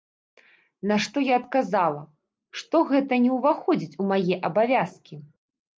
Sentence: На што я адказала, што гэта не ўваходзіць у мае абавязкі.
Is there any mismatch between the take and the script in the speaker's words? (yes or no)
no